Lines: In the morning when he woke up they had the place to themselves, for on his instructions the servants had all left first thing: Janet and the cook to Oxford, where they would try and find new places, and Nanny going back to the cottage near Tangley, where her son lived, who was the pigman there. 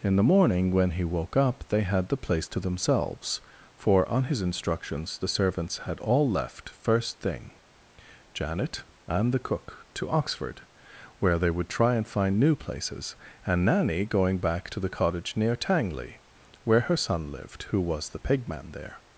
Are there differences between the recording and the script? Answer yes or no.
no